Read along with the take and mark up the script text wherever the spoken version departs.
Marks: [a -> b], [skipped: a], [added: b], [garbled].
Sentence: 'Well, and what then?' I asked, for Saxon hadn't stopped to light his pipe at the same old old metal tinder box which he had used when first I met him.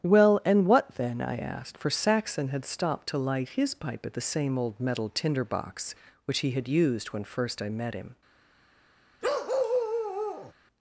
'Well, and what then?' I asked, for Saxon [hadn't -> had] stopped to light his pipe at the same old [skipped: old] metal tinder box which he had used when first I met him.